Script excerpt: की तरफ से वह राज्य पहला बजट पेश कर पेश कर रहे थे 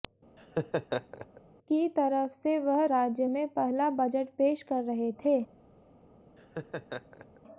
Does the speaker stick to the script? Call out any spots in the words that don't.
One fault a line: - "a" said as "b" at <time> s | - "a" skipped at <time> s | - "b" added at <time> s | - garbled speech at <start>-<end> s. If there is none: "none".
- "में" added at 3.3 s
- "पेश कर" skipped at 4.8 s